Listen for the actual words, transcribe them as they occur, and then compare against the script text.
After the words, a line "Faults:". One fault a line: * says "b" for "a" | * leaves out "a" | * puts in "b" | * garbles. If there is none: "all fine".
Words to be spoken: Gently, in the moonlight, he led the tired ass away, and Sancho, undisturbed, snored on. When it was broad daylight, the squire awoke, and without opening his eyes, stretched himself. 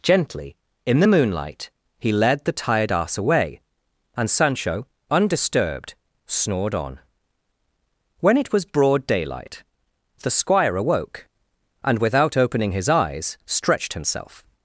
Gently, in the moonlight, he led the tired ass away, and Sancho, undisturbed, snored on. When it was broad daylight, the squire awoke, and without opening his eyes, stretched himself.
Faults:
all fine